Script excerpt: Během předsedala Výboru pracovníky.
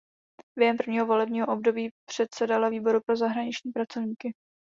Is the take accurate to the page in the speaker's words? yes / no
no